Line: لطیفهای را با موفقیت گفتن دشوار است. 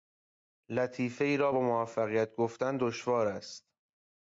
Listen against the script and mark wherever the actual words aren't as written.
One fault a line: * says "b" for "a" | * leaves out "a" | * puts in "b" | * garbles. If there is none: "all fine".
all fine